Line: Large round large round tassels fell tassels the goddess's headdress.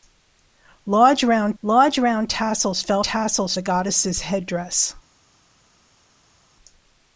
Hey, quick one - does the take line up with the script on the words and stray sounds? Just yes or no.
yes